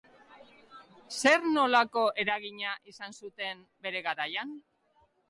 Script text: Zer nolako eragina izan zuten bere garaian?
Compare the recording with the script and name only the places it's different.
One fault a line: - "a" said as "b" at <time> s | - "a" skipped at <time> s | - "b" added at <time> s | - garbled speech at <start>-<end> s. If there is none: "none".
none